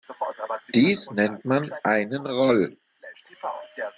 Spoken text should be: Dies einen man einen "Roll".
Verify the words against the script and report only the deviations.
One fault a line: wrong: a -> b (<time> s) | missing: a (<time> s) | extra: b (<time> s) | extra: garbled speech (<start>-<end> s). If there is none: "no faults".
wrong: einen -> nennt (1.1 s)